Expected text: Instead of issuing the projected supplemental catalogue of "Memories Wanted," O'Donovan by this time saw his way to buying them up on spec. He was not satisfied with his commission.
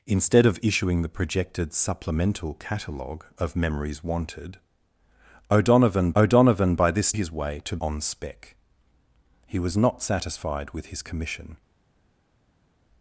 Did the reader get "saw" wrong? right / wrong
wrong